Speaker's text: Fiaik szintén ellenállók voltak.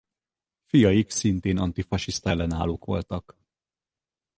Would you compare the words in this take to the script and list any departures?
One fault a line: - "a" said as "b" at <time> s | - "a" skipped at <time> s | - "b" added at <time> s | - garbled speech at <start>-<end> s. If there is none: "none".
- "antifasiszta" added at 1.6 s